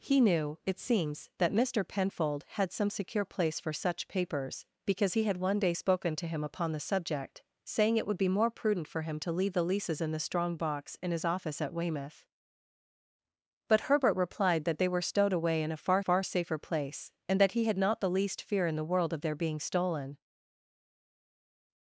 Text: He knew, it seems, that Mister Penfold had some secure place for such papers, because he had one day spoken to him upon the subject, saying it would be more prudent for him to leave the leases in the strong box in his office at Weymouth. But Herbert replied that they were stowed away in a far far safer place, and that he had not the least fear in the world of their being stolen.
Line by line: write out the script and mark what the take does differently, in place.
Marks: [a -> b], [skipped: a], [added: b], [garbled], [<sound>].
He knew, it seems, that Mister Penfold had some secure place for such papers, because he had one day spoken to him upon the subject, saying it would be more prudent for him to leave the leases in the strong box in his office at Weymouth. But Herbert replied that they were stowed away in a far far safer place, and that he had not the least fear in the world of their being stolen.